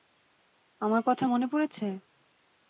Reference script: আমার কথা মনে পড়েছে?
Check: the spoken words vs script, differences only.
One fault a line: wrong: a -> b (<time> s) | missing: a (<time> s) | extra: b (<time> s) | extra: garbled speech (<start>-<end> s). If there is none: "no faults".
no faults